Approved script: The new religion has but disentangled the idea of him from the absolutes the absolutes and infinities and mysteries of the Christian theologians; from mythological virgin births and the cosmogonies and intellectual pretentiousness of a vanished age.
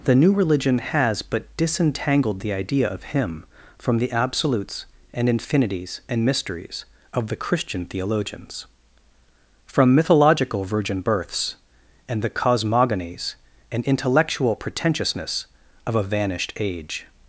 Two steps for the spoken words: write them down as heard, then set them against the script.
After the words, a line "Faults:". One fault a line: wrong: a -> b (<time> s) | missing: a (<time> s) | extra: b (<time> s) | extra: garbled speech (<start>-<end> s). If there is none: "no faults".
The new religion has but disentangled the idea of him from the absolutes and infinities and mysteries of the Christian theologians; from mythological virgin births and the cosmogonies and intellectual pretentiousness of a vanished age.
Faults:
missing: the absolutes (4.9 s)